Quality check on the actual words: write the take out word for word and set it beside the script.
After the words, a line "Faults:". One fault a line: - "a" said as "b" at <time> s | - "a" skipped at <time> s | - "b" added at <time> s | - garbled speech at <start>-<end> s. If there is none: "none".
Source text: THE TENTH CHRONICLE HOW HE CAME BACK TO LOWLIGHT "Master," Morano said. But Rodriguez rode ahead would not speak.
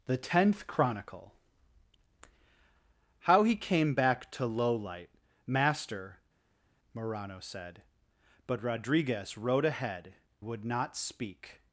THE TENTH CHRONICLE HOW HE CAME BACK TO LOWLIGHT "Master," Morano said. But Rodriguez rode ahead would not speak.
Faults:
none